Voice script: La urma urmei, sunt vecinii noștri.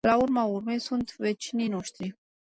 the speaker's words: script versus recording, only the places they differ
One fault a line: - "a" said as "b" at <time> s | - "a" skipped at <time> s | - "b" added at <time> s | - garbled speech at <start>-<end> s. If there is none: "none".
none